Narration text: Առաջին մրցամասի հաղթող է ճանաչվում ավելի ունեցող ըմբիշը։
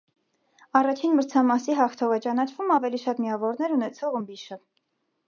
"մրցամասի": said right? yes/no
yes